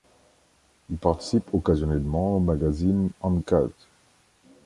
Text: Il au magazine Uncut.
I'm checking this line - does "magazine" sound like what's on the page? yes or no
yes